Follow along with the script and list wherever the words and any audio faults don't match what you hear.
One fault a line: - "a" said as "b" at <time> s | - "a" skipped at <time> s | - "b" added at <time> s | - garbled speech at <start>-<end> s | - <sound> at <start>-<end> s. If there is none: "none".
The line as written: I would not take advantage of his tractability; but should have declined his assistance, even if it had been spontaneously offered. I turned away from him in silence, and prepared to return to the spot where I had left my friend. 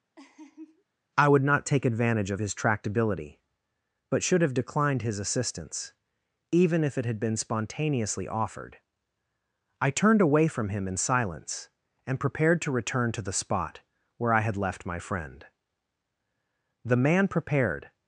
- laugh at 0.2-0.8 s
- "The man prepared" added at 16.8 s